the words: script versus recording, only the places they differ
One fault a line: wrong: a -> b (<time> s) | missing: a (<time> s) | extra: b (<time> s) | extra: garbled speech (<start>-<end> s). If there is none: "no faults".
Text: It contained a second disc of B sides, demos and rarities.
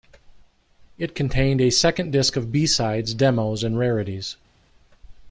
no faults